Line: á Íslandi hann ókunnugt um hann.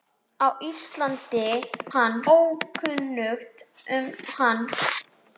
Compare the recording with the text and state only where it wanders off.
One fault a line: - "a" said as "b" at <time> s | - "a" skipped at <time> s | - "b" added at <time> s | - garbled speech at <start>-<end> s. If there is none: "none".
none